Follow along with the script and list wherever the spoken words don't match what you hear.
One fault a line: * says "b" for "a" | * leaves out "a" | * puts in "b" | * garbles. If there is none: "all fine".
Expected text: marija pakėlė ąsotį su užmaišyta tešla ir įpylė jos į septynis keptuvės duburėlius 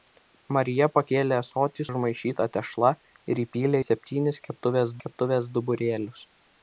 * leaves out "su"
* leaves out "jos"
* puts in "keptuvės"